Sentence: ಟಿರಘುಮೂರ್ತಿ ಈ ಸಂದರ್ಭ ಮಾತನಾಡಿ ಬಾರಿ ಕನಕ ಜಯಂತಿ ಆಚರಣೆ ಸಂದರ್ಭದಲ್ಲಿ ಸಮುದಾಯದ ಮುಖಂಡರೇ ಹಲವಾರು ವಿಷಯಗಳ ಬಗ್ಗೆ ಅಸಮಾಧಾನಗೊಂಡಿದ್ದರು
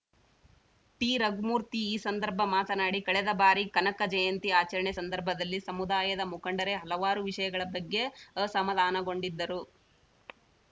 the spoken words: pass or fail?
fail